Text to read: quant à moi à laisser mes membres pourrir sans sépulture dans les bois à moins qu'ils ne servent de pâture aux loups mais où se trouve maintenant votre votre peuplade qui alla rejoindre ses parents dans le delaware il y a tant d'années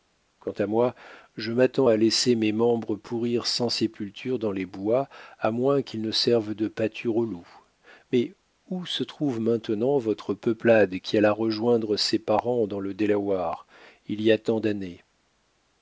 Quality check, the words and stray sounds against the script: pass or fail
fail